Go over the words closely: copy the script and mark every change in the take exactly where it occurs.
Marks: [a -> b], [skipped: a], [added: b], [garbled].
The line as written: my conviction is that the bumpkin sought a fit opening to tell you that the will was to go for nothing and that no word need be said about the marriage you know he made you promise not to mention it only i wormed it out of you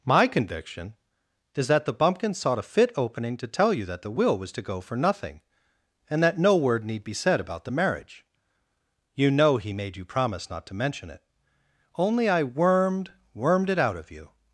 my conviction is that the bumpkin sought a fit opening to tell you that the will was to go for nothing and that no word need be said about the marriage you know he made you promise not to mention it only i wormed [added: wormed] it out of you